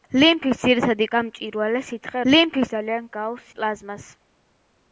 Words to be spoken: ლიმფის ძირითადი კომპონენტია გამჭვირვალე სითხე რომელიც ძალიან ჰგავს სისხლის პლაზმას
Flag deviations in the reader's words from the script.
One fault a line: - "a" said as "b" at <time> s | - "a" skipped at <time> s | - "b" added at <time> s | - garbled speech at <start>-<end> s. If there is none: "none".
- "კომპონენტია" skipped at 1.1 s
- "რომელიც" said as "ლიმფის" at 2.3 s
- "სისხლის" skipped at 3.5 s